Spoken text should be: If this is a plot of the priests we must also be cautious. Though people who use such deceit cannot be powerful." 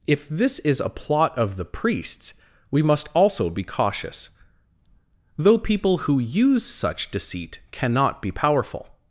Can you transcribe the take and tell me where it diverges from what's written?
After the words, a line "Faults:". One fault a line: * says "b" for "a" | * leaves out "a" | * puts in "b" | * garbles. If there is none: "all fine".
If this is a plot of the priests we must also be cautious. Though people who use such deceit cannot be powerful."
Faults:
all fine